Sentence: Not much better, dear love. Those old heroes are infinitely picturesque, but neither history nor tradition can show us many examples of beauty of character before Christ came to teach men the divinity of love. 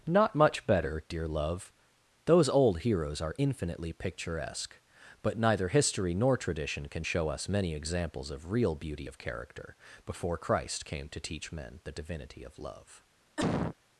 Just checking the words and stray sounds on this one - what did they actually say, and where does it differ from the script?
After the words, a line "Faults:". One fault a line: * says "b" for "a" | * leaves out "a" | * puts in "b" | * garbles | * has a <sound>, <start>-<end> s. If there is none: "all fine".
Not much better, dear love. Those old heroes are infinitely picturesque, but neither history nor tradition can show us many examples of real beauty of character before Christ came to teach men the divinity of love.
Faults:
* puts in "real"
* has a cough, 13.4-13.8 s